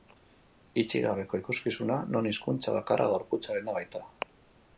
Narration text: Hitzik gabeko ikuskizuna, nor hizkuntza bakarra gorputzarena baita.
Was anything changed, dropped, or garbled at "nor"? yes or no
yes